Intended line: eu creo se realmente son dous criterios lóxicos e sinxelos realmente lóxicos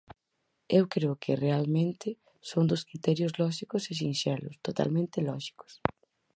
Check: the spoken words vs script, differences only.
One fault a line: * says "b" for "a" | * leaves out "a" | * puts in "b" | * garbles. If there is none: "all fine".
* says "que" for "se"
* says "totalmente" for "realmente"